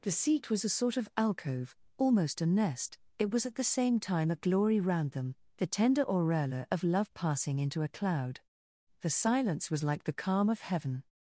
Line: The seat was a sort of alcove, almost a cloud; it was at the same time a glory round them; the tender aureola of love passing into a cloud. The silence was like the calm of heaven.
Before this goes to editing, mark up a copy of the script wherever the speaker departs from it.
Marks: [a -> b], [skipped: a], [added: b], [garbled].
The seat was a sort of alcove, almost a [cloud; -> nest] it was at the same time a glory round them; the tender aureola of love passing into a cloud. The silence was like the calm of heaven.